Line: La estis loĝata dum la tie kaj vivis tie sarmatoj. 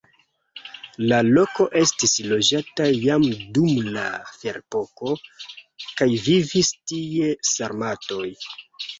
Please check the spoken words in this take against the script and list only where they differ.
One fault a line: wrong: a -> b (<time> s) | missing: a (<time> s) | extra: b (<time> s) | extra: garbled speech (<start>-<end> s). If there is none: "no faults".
extra: loko (1.2 s)
extra: jam (2.9 s)
wrong: tie -> ferepoko (4.4 s)